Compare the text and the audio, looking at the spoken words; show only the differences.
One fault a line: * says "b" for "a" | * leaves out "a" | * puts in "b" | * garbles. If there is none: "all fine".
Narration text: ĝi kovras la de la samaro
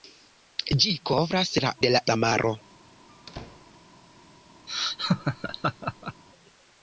all fine